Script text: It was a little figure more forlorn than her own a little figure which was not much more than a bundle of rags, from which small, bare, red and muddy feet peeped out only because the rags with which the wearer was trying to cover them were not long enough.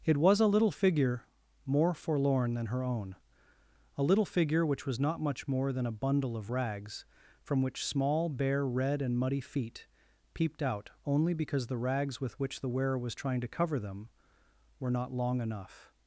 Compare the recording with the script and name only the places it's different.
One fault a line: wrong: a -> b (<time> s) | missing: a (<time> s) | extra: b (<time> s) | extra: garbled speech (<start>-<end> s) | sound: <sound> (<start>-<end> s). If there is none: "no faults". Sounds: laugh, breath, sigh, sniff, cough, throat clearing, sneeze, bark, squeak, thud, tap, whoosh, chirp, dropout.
no faults